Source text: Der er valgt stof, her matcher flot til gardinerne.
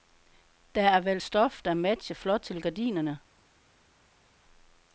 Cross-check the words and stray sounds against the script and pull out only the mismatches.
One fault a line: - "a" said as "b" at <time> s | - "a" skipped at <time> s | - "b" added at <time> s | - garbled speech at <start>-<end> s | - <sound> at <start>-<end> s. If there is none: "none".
- "her" said as "der" at 1.6 s